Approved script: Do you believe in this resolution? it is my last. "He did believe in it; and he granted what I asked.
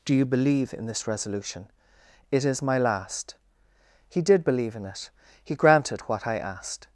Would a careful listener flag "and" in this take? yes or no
yes